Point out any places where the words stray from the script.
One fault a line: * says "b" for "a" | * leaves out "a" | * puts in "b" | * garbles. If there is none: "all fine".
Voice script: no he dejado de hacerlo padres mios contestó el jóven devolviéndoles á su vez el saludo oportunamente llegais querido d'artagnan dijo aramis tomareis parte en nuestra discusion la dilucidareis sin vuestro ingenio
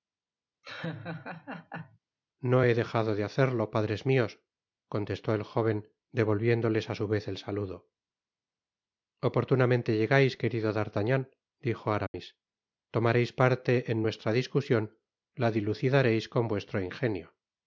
* says "con" for "sin"